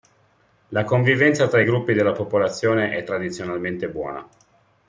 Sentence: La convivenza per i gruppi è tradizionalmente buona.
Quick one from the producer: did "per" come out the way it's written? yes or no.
no